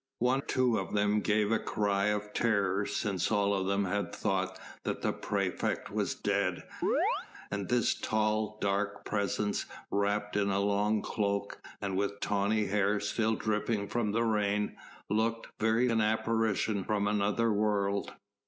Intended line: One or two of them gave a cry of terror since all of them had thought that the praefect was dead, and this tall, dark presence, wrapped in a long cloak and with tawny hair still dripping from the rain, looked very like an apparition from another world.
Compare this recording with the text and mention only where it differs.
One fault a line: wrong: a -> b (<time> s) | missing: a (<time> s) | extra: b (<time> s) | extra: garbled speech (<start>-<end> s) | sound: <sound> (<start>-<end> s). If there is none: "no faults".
missing: or (0.4 s)
sound: chirp (6.8-7.3 s)
missing: like (15.9 s)